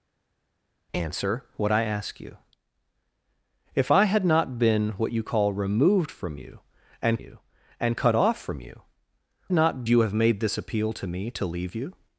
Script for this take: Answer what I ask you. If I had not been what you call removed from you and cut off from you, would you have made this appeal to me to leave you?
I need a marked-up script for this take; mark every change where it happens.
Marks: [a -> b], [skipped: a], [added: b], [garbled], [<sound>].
Answer what I ask you. If I had not been what you call removed from you and [added: you and] cut off from you, [would -> not] you have made this appeal to me to leave you?